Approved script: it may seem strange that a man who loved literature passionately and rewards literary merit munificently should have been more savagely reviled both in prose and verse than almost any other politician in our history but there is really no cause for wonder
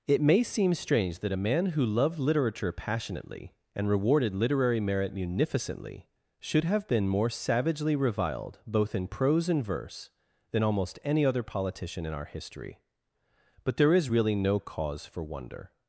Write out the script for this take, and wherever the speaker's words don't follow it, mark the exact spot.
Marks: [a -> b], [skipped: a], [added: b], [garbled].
it may seem strange that a man who loved literature passionately and [rewards -> rewarded] literary merit munificently should have been more savagely reviled both in prose and verse than almost any other politician in our history but there is really no cause for wonder